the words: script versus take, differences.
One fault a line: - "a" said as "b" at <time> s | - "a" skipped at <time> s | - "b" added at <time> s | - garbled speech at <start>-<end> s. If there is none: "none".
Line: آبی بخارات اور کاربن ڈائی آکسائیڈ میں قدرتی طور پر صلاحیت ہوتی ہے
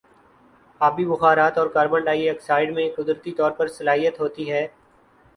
none